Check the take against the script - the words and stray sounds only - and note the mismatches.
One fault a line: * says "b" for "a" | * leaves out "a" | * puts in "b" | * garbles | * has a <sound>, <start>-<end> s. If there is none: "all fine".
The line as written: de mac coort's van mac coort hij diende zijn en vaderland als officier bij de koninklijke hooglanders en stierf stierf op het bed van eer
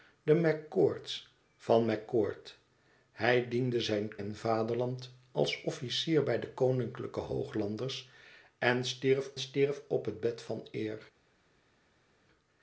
all fine